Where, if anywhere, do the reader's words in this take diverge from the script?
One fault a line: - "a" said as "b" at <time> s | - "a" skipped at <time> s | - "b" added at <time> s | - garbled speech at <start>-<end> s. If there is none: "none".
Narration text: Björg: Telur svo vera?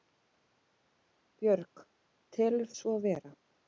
none